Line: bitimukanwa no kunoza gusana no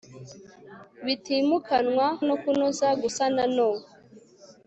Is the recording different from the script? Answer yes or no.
no